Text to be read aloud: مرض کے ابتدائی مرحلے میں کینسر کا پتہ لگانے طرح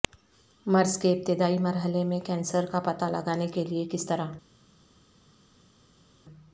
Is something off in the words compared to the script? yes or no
yes